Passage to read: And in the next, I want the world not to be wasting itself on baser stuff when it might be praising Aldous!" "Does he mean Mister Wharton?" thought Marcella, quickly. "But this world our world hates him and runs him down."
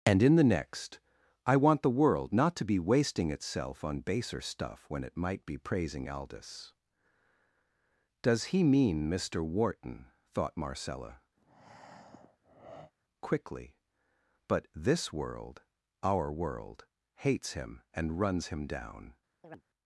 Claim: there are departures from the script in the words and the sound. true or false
true